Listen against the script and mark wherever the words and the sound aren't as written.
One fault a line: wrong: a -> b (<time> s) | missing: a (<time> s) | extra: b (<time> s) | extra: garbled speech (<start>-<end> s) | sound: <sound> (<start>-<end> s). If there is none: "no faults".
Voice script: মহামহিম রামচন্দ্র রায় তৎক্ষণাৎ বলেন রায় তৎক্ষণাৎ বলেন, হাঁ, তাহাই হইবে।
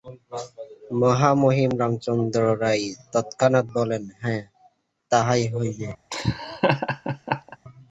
missing: রায় তৎক্ষণাৎ বলেন (4.0 s)
sound: laugh (6.1-7.6 s)